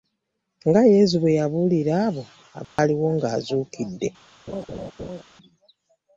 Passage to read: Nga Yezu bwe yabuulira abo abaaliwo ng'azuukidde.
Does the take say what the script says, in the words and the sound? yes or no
no